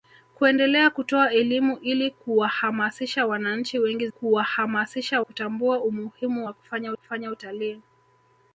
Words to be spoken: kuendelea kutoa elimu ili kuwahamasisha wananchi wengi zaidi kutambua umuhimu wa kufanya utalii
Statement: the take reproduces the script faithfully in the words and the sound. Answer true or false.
false